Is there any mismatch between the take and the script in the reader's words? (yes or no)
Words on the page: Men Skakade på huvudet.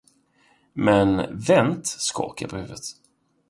yes